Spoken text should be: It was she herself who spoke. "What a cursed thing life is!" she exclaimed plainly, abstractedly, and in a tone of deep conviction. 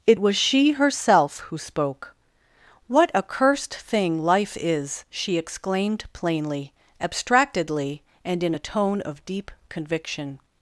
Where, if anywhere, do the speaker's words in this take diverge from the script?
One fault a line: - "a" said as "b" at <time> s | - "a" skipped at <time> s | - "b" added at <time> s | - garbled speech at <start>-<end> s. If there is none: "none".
none